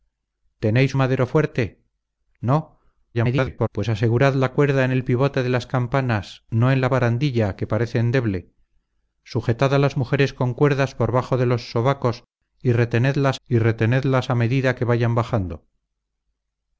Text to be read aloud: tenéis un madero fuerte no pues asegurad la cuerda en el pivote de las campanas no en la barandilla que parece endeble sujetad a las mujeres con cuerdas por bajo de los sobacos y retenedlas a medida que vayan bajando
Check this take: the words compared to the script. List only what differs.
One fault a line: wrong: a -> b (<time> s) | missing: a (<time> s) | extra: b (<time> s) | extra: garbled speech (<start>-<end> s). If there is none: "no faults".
missing: un (0.9 s)
extra: garbled speech (3.1-3.7 s)
extra: y retenedlas (13.5 s)